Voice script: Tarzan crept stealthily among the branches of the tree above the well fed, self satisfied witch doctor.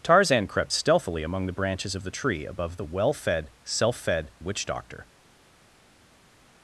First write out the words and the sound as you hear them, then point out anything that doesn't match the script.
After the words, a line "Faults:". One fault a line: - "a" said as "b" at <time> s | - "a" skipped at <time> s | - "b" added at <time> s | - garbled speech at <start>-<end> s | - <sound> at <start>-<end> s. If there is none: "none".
Tarzan crept stealthily among the branches of the tree above the well fed, self fed witch doctor.
Faults:
- "satisfied" said as "fed" at 3.9 s